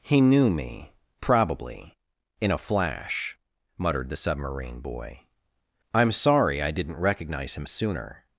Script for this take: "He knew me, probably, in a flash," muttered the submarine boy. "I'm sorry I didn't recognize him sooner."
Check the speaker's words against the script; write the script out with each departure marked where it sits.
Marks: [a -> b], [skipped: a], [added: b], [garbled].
"He knew me, probably, in a flash," muttered the submarine boy. "I'm sorry I didn't recognize him sooner."